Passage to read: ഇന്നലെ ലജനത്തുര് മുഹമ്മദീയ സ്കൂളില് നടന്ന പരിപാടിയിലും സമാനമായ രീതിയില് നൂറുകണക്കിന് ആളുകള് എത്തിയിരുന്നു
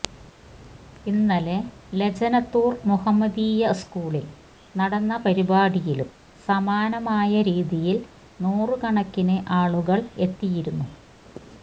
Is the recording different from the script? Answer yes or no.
no